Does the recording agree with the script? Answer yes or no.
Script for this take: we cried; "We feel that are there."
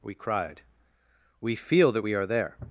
no